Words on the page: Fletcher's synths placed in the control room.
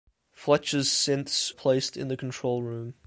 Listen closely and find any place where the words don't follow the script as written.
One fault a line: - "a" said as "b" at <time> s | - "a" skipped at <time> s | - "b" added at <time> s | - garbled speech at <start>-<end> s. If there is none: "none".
none